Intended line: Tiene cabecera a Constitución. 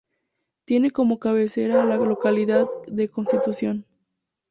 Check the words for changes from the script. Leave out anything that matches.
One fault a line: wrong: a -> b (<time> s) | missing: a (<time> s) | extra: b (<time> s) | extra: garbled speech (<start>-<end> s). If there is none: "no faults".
extra: como (0.9 s)
extra: la localidad de (1.9 s)